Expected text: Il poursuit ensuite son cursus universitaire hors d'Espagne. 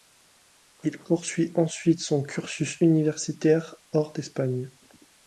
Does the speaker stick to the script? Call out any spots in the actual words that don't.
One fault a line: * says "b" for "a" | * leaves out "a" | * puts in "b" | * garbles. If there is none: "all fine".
all fine